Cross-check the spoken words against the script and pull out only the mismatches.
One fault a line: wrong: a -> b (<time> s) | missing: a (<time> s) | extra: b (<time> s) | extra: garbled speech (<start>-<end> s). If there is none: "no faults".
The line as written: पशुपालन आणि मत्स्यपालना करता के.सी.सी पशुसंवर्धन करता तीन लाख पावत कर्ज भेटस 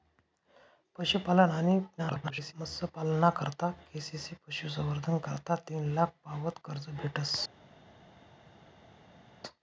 extra: garbled speech (2.0-2.5 s)